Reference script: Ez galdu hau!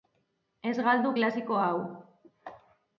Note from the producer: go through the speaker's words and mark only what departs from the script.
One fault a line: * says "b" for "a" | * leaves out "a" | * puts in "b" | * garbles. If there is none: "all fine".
* puts in "klasiko"